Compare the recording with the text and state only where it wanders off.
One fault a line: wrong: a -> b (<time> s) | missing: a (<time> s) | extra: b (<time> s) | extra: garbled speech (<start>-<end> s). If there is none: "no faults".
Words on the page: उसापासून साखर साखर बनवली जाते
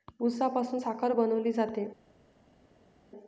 missing: साखर (1.1 s)